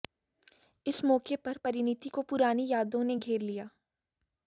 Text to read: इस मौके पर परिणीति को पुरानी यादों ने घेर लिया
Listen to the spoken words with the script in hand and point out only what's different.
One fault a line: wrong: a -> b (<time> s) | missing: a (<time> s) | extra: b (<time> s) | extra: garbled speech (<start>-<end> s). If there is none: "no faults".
no faults